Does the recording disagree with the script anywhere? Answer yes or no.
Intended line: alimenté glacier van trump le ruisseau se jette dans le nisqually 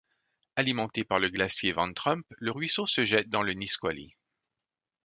yes